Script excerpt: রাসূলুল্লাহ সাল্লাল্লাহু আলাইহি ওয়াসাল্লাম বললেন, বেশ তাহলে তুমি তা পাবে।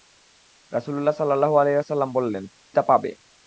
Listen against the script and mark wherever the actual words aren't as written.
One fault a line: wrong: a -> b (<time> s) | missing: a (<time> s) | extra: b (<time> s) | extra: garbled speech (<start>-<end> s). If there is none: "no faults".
missing: বেশ তাহলে তুমি (2.4 s)